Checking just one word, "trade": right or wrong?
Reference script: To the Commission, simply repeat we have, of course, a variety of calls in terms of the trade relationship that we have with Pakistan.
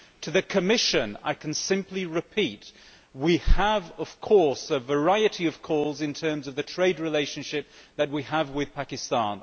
right